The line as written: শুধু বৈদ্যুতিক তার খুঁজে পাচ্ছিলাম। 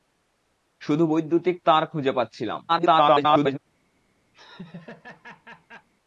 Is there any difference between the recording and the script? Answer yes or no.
yes